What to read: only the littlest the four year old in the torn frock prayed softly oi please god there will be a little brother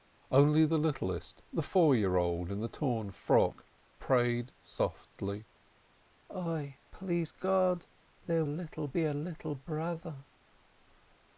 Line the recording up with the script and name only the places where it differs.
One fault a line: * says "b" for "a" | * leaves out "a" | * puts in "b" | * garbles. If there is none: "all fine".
* says "little" for "will"